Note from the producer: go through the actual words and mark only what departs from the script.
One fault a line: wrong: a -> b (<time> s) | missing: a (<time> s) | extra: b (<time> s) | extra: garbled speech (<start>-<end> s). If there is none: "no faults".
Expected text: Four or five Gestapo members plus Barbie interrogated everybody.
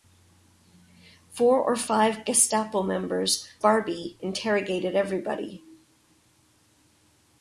missing: plus (3.5 s)